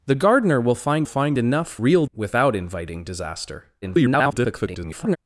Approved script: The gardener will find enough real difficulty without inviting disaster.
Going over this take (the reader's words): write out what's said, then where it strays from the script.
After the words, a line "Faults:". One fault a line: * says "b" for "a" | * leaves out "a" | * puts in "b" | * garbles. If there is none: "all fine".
The gardener will find find enough real without inviting disaster. [garbled]
Faults:
* puts in "find"
* leaves out "difficulty"
* garbles